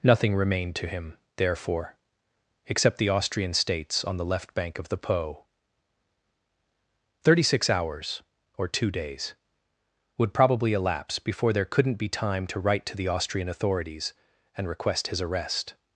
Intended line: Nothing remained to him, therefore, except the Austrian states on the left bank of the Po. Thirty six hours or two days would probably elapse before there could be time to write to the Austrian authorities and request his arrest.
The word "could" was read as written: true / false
false